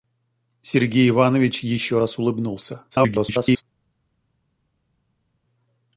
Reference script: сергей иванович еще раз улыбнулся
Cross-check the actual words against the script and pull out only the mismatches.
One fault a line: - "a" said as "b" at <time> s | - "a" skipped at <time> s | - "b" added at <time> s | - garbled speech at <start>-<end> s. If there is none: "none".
- garbled speech at 2.9-3.6 s